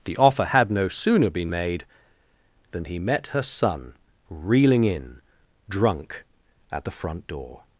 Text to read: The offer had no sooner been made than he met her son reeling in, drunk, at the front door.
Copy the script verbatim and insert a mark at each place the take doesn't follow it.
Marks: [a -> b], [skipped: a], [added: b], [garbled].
The offer had no sooner been made than he met her son reeling in, drunk, at the front door.